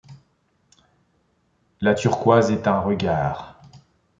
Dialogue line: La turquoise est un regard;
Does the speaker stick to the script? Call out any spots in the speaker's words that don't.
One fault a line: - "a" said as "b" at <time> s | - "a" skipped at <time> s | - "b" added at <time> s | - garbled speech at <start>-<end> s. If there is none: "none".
none